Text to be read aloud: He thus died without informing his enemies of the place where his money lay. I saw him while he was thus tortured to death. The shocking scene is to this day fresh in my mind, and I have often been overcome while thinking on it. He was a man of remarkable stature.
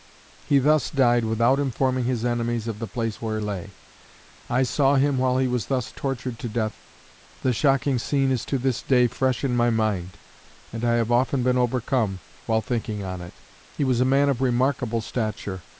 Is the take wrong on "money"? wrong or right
wrong